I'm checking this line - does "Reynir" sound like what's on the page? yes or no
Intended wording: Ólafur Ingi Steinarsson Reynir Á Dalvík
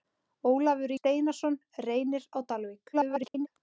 yes